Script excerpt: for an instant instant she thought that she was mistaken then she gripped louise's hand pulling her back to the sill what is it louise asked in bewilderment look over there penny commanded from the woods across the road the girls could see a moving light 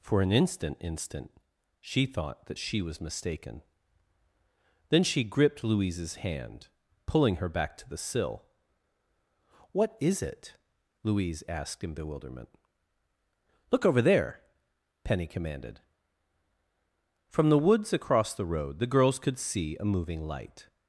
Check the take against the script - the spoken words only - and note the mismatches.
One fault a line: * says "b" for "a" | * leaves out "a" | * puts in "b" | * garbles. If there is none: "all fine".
all fine